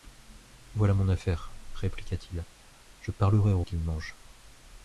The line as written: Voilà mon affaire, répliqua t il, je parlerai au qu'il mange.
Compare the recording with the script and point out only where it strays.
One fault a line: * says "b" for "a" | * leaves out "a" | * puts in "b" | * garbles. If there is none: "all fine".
all fine